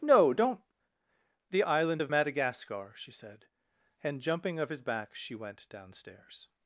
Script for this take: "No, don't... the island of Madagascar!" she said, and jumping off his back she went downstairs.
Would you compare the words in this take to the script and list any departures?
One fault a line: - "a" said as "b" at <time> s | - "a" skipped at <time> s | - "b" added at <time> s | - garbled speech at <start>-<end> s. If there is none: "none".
- "off" said as "of" at 4.6 s